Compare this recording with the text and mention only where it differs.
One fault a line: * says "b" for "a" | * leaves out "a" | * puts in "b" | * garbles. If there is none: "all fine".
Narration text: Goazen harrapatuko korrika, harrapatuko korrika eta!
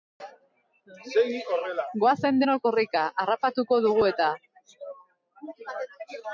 * says "denok" for "harrapatuko"
* says "dugu" for "korrika"